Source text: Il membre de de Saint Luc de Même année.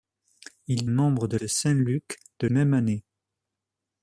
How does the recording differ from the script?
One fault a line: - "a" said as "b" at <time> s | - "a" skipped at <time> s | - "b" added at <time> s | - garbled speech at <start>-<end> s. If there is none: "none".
none